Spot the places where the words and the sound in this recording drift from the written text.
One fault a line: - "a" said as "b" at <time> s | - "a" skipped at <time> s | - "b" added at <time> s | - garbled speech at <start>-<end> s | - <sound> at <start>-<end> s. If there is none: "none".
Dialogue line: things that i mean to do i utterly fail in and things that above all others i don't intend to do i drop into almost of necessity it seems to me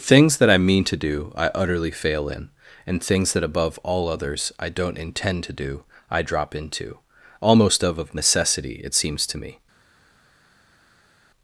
- "of" added at 8.0 s